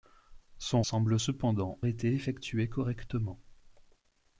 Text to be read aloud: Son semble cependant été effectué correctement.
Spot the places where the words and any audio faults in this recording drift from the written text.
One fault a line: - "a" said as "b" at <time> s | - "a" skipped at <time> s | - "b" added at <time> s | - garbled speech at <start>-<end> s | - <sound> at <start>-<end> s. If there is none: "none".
none